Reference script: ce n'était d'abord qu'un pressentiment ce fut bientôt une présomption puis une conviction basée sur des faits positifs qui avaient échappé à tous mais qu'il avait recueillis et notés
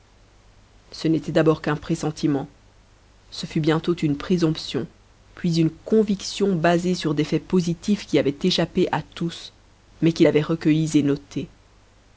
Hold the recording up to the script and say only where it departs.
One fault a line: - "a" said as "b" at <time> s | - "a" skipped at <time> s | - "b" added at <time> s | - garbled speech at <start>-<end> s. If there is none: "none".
none